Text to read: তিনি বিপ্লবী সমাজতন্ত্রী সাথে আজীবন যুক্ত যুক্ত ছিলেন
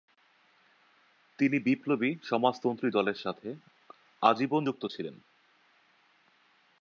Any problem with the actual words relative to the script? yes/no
yes